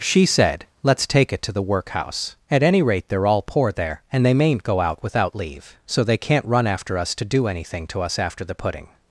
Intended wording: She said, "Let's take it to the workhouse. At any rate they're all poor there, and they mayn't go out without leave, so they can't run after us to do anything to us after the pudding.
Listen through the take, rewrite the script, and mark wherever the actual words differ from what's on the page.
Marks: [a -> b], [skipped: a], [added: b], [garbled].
She said, "Let's take it to the workhouse. At any rate they're all poor there, and they mayn't go out without leave, so they can't run after us to do anything to us after the pudding.